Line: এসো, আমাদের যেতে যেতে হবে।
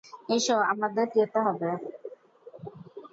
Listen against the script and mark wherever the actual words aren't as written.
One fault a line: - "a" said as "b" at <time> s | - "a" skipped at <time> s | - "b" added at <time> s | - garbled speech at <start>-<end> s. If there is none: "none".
- "যেতে" skipped at 1.4 s